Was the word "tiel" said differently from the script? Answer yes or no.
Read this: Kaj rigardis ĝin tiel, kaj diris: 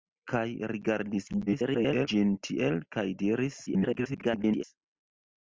no